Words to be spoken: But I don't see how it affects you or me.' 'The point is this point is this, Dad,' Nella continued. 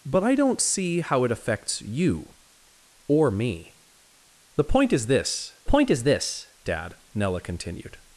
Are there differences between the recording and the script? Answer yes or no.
no